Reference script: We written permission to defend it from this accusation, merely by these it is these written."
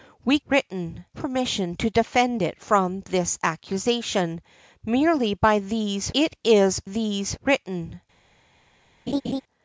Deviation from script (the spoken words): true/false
false